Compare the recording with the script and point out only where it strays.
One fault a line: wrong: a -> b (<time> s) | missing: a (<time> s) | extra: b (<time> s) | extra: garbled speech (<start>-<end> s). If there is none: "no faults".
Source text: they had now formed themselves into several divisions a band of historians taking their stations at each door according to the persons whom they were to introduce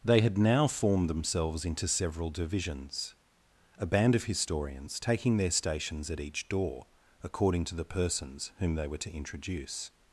no faults